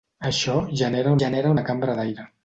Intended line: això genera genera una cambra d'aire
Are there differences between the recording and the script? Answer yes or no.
no